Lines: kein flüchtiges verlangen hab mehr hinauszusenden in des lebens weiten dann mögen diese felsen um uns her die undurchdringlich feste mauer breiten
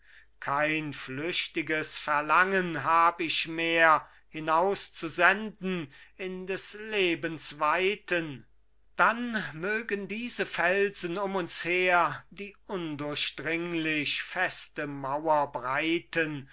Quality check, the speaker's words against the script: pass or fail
fail